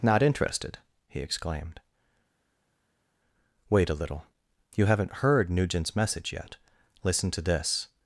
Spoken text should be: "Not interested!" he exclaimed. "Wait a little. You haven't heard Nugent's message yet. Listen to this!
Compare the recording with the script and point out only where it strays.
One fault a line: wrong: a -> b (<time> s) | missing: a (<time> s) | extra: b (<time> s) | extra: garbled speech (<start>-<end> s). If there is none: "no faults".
no faults